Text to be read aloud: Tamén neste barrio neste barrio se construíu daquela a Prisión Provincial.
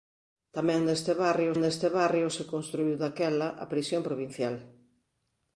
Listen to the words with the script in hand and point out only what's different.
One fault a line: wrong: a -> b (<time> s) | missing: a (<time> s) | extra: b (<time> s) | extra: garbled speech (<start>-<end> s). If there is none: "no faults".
no faults